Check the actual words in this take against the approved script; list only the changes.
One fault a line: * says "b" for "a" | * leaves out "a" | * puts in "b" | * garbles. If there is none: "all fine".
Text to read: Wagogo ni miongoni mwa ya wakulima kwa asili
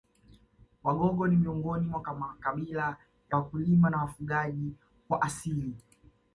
* puts in "makabila"
* puts in "na wafugaji"